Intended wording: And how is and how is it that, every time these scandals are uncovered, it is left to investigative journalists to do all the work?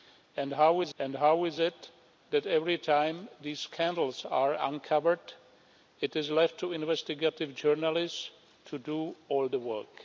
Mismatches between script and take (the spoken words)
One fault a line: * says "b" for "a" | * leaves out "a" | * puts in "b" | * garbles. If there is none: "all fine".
all fine